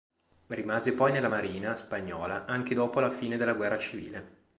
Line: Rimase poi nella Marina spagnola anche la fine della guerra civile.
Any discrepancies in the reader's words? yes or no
yes